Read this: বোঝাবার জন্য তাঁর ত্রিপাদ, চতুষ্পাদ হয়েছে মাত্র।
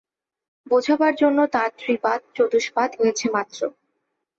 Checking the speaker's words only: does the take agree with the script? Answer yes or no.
yes